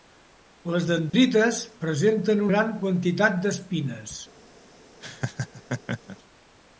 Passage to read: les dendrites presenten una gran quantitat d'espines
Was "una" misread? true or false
true